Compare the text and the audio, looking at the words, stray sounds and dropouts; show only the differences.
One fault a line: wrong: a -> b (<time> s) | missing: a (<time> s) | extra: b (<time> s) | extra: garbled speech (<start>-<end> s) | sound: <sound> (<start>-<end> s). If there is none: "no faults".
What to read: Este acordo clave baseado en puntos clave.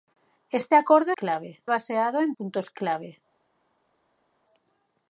no faults